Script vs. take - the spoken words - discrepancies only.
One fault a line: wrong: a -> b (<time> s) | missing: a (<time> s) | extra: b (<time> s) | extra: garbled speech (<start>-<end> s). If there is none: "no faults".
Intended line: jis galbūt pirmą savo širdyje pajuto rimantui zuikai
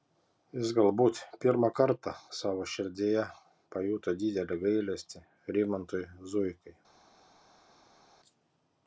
extra: kartą (1.8 s)
extra: didelį gailestį (4.2 s)